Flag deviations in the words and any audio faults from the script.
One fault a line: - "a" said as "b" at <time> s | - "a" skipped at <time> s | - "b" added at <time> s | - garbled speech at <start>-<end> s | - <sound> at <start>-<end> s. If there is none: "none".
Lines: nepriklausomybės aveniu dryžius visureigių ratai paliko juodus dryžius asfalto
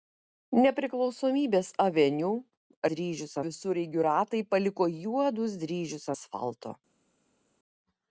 none